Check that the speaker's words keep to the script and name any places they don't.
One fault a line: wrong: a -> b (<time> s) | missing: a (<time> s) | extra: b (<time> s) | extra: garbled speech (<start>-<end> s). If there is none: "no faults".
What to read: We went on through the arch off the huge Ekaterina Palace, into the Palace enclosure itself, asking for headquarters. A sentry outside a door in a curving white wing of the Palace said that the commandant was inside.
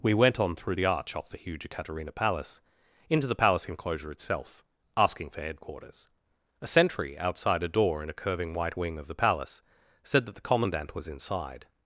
no faults